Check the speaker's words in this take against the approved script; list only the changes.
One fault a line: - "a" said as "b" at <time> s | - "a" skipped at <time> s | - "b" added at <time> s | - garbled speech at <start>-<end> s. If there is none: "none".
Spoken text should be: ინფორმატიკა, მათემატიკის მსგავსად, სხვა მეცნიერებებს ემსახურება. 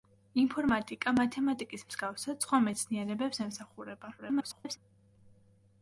- garbled speech at 4.2-4.8 s